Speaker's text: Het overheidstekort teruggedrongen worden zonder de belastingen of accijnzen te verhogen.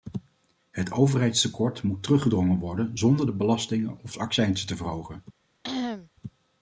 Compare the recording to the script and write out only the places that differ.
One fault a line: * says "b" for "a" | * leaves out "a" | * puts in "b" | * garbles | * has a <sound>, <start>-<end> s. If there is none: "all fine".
* puts in "moet"
* has a cough, 5.6-6.1 s